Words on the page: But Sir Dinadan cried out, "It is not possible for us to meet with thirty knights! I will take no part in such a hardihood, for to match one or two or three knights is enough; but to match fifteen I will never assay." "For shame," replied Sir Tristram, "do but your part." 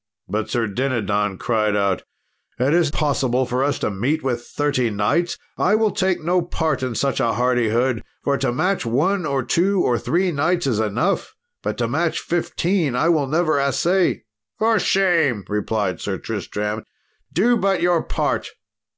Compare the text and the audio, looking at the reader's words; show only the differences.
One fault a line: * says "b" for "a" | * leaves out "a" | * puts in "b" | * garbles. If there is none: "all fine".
* leaves out "not"